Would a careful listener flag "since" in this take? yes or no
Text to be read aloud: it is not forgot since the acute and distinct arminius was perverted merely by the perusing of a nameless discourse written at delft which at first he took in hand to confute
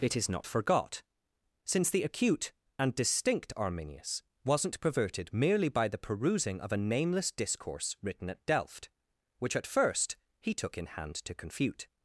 no